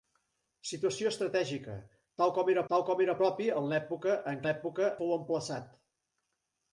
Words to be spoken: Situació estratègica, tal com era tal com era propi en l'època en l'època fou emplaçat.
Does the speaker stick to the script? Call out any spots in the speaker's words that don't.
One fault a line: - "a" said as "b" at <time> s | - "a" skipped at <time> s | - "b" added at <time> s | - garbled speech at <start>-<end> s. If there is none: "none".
none